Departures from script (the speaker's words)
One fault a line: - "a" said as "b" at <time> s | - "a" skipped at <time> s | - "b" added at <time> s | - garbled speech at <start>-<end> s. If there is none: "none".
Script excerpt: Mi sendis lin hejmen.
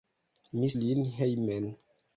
- "sendis" skipped at 0.7 s